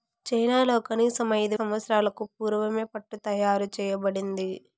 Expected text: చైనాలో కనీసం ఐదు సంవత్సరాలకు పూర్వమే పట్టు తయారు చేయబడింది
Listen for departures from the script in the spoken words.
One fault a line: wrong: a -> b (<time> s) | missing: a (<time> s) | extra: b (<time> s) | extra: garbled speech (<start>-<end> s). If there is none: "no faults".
no faults